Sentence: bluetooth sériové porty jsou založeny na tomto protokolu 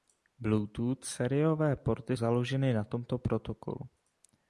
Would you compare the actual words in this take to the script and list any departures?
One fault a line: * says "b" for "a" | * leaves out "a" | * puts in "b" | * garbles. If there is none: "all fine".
* leaves out "jsou"